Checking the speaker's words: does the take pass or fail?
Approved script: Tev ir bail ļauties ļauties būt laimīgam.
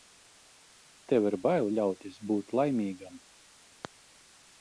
fail